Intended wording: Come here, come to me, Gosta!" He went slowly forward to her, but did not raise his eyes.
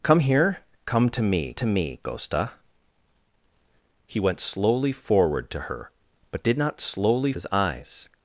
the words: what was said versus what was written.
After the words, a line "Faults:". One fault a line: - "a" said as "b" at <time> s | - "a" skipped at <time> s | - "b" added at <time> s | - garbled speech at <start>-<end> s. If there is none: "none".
Come here, come to me to me, Gosta!" He went slowly forward to her, but did not slowly his eyes.
Faults:
- "to me" added at 1.5 s
- "raise" said as "slowly" at 6.8 s